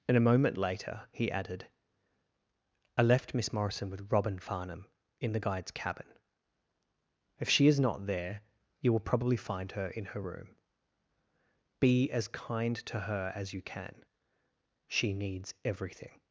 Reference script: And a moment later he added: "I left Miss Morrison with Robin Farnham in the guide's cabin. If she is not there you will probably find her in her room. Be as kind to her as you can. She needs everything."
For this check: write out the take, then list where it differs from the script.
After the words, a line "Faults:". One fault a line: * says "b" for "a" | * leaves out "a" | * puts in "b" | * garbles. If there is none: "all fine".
And a moment later he added: "I left Miss Morrison with Robin Farnham in the guide's cabin. If she is not there you will probably find her in her room. Be as kind to her as you can. She needs everything."
Faults:
all fine